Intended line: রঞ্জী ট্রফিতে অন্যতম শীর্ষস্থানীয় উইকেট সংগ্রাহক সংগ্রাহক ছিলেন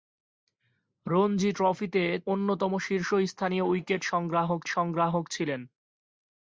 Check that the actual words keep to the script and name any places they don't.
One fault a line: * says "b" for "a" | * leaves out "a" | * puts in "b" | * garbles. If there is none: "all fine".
all fine